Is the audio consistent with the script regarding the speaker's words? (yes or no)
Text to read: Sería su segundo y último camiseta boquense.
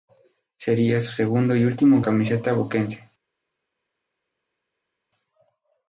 yes